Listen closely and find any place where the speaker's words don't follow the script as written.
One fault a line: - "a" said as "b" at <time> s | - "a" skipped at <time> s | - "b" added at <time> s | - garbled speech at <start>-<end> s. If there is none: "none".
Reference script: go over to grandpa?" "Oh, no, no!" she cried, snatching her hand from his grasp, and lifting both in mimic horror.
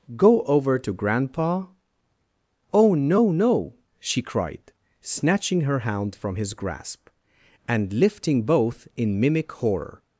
- "hand" said as "hound" at 5.8 s